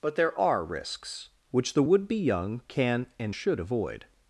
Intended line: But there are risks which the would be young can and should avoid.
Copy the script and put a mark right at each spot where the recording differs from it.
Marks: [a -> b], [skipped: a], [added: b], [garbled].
But there are risks which the would be young can and should avoid.